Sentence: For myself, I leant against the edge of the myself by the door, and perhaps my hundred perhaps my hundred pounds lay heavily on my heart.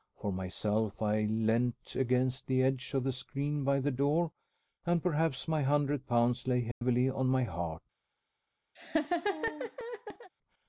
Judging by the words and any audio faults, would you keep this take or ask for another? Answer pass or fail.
fail